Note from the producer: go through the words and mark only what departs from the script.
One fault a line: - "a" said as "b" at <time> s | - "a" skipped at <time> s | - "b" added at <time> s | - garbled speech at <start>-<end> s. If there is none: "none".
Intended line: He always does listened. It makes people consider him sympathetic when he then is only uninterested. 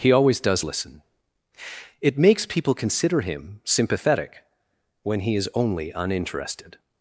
- "listened" said as "listen" at 0.6 s
- "then" skipped at 5.3 s